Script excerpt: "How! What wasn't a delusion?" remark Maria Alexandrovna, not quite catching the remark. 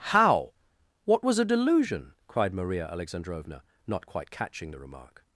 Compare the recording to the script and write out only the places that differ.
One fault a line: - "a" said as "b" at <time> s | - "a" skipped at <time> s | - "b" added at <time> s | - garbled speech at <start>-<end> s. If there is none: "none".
- "wasn't" said as "was" at 1.2 s
- "remark" said as "cried" at 2.2 s